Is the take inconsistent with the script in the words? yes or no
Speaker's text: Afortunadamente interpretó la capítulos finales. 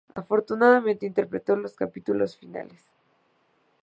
yes